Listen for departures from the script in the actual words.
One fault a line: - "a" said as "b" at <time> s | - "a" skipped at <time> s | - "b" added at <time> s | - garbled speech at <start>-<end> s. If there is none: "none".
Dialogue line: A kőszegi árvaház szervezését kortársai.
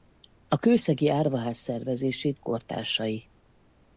none